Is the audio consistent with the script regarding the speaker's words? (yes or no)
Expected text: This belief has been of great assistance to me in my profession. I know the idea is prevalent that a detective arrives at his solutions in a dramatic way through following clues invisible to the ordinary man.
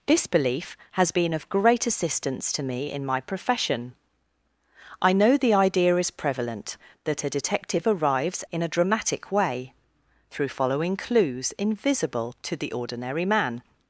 no